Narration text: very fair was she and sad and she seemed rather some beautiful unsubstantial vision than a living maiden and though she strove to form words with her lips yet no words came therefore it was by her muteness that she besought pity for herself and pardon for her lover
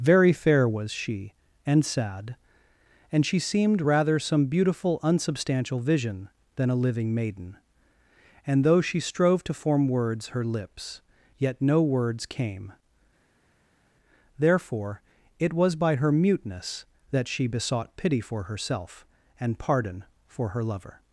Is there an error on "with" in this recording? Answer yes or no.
yes